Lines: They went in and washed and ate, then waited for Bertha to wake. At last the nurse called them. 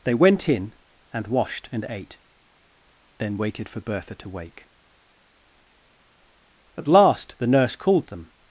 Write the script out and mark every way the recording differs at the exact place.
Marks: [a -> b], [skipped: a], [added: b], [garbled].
They went in and washed and ate, then waited for Bertha to wake. At last the nurse called them.